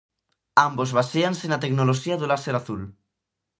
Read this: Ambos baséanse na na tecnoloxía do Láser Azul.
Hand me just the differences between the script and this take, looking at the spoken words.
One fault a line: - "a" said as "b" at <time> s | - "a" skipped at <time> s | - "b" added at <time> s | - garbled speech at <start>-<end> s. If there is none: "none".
- "na" skipped at 1.6 s